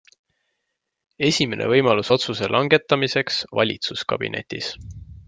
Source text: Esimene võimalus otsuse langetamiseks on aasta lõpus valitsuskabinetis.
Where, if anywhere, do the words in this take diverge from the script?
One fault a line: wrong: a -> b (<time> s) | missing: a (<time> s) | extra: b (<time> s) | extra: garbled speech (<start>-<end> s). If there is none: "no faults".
missing: on aasta lõpus (3.4 s)